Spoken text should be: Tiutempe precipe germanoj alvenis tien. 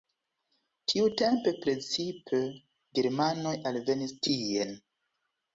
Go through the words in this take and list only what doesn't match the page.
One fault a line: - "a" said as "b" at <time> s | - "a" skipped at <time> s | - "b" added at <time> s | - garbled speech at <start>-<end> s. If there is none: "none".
none